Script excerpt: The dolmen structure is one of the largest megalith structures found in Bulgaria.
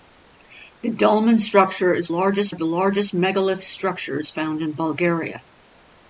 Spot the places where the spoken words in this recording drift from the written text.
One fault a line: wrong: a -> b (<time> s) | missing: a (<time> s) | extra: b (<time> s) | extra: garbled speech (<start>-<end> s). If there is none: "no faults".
wrong: one -> largest (2.1 s)